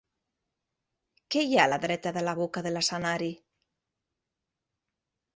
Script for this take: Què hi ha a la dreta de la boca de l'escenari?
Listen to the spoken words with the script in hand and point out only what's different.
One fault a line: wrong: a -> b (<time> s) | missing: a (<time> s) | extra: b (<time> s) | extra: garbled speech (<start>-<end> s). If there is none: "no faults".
no faults